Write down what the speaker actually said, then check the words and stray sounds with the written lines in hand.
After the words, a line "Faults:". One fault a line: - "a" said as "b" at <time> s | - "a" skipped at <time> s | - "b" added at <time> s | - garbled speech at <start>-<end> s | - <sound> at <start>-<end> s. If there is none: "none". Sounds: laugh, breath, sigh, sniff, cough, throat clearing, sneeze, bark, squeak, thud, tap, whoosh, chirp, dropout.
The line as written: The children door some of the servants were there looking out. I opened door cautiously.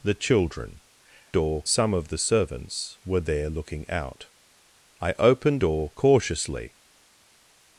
The children door some of the servants were there looking out. I opened door cautiously.
Faults:
none